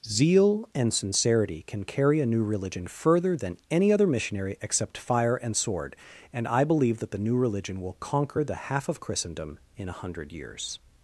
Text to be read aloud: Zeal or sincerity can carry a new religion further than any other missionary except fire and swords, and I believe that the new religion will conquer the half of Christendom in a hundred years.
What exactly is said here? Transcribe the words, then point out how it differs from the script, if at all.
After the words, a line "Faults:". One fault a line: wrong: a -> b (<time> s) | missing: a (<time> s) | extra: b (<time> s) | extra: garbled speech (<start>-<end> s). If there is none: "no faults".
Zeal and sincerity can carry a new religion further than any other missionary except fire and sword, and I believe that the new religion will conquer the half of Christendom in a hundred years.
Faults:
wrong: or -> and (0.7 s)
wrong: swords -> sword (5.6 s)